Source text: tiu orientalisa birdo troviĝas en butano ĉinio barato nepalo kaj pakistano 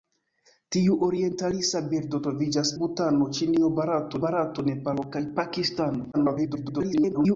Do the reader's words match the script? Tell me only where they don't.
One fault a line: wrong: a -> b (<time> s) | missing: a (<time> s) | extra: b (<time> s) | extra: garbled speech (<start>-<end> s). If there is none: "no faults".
missing: en (2.7 s)
extra: barato (4.3 s)
extra: garbled speech (6.1-7.4 s)